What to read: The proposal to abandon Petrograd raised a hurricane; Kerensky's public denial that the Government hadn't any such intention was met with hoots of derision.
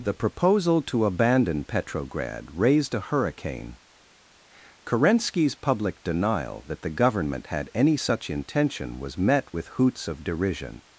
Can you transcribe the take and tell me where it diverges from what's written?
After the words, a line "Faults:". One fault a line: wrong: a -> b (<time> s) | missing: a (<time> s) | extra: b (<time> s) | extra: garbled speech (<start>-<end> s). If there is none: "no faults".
The proposal to abandon Petrograd raised a hurricane; Kerensky's public denial that the Government had any such intention was met with hoots of derision.
Faults:
wrong: hadn't -> had (7.4 s)